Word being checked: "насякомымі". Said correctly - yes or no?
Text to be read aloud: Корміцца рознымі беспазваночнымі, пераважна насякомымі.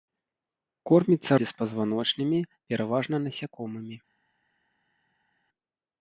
yes